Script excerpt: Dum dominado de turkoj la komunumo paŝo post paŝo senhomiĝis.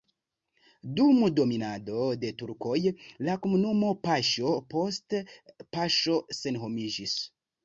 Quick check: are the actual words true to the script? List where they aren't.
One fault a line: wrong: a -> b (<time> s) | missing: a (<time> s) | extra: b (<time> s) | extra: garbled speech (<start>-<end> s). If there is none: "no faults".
no faults